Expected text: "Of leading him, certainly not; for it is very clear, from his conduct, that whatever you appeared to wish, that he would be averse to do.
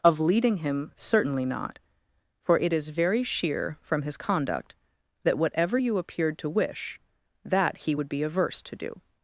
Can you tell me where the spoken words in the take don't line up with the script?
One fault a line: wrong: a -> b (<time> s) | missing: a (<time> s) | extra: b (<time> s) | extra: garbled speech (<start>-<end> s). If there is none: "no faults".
wrong: clear -> sheer (3.2 s)